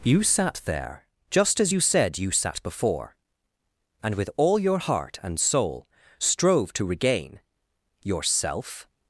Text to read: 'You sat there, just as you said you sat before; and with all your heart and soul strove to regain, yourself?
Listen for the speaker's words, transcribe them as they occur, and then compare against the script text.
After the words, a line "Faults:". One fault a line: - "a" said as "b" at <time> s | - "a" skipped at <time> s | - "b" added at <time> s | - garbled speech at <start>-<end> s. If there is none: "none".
'You sat there, just as you said you sat before; and with all your heart and soul strove to regain, yourself?
Faults:
none